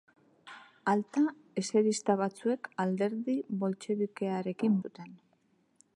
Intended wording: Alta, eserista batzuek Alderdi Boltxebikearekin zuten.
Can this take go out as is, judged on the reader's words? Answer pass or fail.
pass